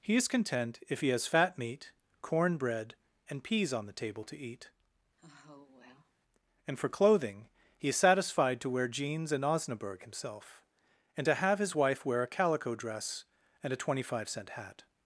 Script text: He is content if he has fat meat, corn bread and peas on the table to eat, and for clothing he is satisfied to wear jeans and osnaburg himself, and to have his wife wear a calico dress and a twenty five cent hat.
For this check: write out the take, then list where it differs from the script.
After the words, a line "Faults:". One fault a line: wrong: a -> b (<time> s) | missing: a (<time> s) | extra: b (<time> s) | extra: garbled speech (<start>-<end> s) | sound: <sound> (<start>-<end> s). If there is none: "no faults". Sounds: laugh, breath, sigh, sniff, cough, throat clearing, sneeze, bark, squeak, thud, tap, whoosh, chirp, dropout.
He is content if he has fat meat, corn bread and peas on the table to eat, and for clothing he is satisfied to wear jeans and osnaburg himself, and to have his wife wear a calico dress and a twenty five cent hat.
Faults:
sound: sigh (5.2-6.1 s)